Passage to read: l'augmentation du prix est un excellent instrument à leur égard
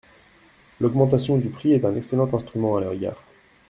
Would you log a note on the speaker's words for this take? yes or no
no